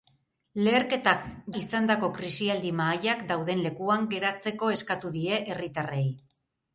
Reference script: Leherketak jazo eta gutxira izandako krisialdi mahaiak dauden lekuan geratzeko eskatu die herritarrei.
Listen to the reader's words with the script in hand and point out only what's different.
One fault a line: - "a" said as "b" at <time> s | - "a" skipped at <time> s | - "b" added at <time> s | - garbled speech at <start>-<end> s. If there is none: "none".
- "jazo eta gutxira" skipped at 1.3 s